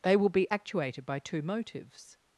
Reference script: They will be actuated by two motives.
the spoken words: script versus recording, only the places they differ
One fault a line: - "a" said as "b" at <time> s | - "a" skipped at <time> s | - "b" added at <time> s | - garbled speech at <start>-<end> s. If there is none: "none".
none